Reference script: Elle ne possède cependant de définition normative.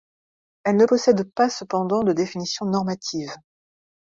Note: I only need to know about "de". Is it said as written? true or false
true